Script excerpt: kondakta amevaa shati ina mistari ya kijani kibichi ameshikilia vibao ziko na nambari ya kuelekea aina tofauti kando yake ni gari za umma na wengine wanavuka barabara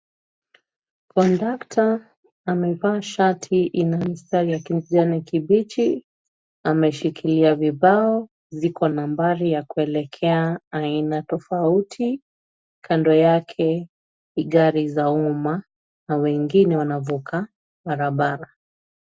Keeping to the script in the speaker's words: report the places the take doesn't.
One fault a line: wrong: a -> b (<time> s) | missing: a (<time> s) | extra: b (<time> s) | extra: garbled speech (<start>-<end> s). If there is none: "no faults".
missing: na (8.9 s)